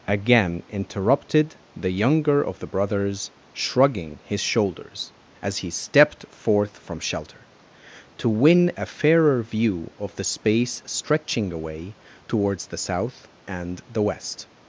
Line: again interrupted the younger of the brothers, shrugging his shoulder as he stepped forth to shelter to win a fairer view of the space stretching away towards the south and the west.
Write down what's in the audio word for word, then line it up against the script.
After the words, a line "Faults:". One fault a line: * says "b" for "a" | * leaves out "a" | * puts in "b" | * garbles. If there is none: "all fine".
again interrupted the younger of the brothers, shrugging his shoulders as he stepped forth from shelter to win a fairer view of the space stretching away towards the south and the west.
Faults:
* says "shoulders" for "shoulder"
* says "from" for "to"